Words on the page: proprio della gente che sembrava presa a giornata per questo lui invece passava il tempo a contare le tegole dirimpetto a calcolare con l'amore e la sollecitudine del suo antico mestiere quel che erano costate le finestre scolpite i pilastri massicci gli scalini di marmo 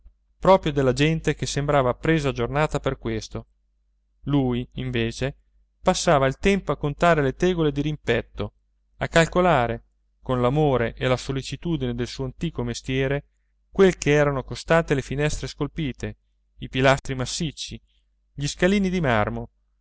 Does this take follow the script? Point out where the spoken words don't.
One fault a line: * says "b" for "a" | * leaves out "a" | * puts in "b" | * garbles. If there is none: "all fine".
all fine